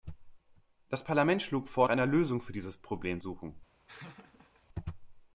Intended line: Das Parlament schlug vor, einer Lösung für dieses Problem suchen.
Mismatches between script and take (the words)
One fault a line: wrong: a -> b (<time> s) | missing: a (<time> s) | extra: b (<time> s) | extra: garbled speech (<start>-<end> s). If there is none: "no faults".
no faults